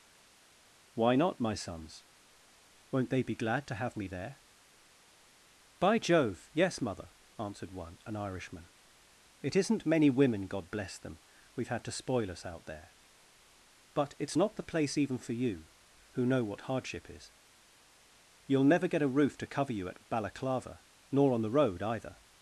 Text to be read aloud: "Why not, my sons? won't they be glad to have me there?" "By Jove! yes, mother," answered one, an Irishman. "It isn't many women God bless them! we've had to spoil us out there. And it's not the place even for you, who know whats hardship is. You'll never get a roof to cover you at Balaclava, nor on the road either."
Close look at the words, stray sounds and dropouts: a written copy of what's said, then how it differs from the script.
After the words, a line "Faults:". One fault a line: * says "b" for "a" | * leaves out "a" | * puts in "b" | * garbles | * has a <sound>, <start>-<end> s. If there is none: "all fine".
"Why not, my sons? won't they be glad to have me there?" "By Jove! yes, mother," answered one, an Irishman. "It isn't many women God bless them! we've had to spoil us out there. But it's not the place even for you, who know what hardship is. You'll never get a roof to cover you at Balaclava, nor on the road either."
Faults:
* says "But" for "And"
* says "what" for "whats"